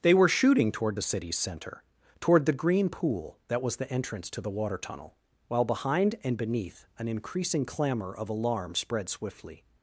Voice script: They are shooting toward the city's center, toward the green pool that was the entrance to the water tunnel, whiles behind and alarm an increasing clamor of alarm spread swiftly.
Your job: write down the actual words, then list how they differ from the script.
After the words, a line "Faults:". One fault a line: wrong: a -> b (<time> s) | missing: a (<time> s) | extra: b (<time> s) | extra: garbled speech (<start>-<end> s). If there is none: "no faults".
They were shooting toward the city's center, toward the green pool that was the entrance to the water tunnel, while behind and beneath an increasing clamor of alarm spread swiftly.
Faults:
wrong: are -> were (0.1 s)
wrong: whiles -> while (5.5 s)
wrong: alarm -> beneath (6.4 s)